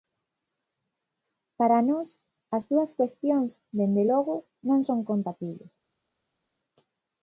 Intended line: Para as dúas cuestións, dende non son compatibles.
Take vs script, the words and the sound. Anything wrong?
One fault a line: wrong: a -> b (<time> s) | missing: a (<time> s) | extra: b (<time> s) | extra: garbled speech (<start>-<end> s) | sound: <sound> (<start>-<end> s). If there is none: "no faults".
extra: nós (1.9 s)
extra: logo (4.1 s)